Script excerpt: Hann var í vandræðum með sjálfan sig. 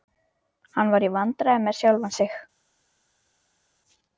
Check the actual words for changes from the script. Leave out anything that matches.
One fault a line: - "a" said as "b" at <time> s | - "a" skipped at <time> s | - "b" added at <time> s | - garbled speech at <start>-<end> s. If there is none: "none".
none